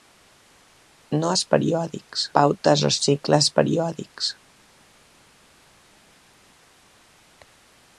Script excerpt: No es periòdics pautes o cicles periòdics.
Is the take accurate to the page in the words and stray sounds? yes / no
yes